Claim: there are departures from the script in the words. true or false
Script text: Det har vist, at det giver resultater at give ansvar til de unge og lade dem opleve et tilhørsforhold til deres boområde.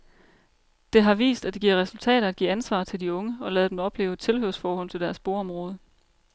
false